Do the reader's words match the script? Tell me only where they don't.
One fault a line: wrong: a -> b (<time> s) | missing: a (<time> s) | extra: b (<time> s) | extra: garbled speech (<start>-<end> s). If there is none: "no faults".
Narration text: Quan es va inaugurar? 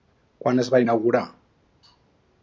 no faults